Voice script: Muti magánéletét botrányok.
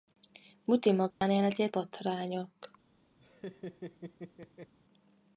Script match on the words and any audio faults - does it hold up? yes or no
no